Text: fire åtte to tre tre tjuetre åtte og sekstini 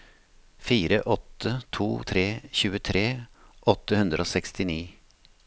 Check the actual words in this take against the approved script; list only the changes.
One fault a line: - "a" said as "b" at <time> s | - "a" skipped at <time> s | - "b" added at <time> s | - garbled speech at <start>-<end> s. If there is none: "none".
- "tre" skipped at 2.2 s
- "hundre" added at 4.0 s